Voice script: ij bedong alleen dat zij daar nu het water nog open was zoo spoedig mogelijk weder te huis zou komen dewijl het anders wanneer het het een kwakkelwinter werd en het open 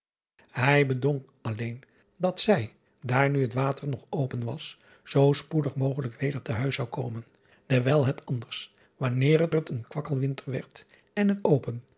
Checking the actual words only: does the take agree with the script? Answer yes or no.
yes